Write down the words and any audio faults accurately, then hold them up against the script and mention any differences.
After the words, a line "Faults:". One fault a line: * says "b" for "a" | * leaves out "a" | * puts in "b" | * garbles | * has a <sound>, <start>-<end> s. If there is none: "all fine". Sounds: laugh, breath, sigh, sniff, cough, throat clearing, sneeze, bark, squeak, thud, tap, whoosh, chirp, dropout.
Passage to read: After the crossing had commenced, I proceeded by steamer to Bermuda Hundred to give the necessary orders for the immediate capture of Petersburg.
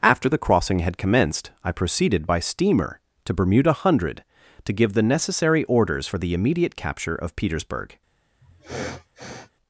After the crossing had commenced, I proceeded by steamer to Bermuda Hundred to give the necessary orders for the immediate capture of Petersburg.
Faults:
* has a sniff, 8.4-9.5 s